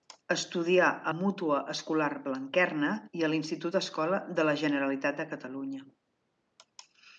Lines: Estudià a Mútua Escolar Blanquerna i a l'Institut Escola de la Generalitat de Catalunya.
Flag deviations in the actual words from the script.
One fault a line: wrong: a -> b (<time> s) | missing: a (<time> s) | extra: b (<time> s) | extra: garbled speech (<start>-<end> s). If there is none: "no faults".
no faults